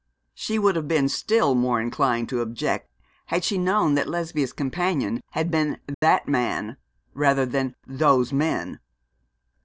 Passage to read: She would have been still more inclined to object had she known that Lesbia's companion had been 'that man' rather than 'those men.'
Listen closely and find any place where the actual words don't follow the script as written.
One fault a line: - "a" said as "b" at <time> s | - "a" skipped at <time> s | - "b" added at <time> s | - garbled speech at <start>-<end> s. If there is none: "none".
none